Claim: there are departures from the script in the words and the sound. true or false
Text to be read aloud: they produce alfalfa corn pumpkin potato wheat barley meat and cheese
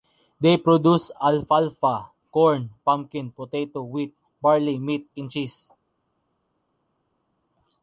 false